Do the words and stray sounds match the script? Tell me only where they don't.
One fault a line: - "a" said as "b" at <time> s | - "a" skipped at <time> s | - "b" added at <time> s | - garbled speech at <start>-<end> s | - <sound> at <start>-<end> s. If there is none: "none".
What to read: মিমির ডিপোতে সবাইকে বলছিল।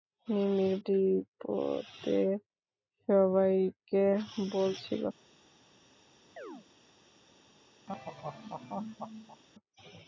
- chirp at 6.4-6.7 s
- laugh at 7.9-9.4 s